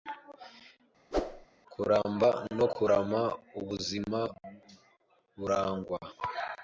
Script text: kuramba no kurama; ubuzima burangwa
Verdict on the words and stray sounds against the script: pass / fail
fail